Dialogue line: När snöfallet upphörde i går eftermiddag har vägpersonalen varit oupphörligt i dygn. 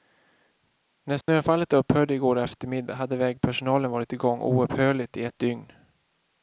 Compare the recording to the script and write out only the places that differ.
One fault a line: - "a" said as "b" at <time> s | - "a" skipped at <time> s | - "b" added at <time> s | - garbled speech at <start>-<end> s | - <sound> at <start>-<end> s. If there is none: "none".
- dropout at 1.2-1.3 s
- "har" said as "hade" at 2.9 s
- "igång" added at 4.1 s
- "ett" added at 5.2 s